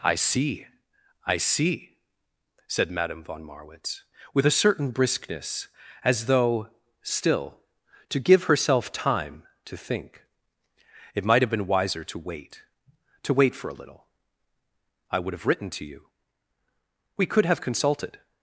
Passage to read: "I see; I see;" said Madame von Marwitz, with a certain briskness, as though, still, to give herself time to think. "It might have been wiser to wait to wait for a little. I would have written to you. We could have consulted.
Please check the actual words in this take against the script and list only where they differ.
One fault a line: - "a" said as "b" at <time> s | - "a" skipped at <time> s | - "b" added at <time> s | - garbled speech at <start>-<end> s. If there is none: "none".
none